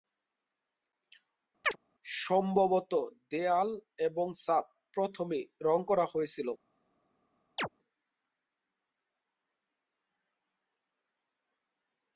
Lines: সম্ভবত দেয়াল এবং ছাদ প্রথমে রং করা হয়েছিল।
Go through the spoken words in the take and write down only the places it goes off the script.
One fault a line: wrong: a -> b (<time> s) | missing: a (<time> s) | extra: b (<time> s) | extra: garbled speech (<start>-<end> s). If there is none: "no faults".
no faults